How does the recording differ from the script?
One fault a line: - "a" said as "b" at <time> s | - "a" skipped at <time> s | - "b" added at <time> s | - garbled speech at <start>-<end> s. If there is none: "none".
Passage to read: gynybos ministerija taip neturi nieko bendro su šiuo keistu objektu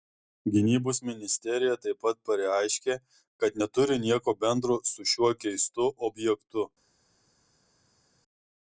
- "pat pareiškė kad" added at 2.1 s